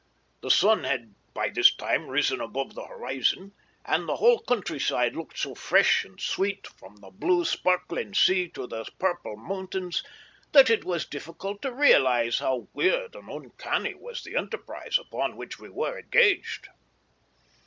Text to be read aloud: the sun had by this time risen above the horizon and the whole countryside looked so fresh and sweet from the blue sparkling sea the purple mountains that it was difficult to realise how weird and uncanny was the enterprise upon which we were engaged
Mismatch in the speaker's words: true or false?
true